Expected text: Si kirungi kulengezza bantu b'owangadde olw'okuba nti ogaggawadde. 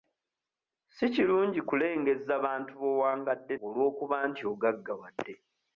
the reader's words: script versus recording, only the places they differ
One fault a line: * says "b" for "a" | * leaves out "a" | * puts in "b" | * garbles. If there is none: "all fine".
all fine